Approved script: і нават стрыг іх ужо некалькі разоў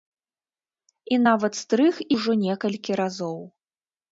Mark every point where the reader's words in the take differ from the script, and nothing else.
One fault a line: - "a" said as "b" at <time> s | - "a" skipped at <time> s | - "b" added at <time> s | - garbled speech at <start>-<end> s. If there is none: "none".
- "іх" skipped at 1.9 s